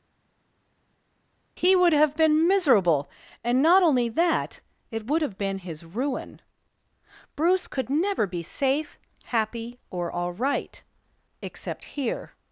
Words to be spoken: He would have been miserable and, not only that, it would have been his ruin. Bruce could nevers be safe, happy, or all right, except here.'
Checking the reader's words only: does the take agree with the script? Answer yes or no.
no